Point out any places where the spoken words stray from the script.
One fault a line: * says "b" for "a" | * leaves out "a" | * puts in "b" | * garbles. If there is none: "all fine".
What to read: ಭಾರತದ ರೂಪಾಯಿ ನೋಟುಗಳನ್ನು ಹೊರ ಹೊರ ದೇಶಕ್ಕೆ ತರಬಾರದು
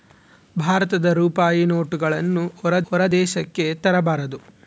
all fine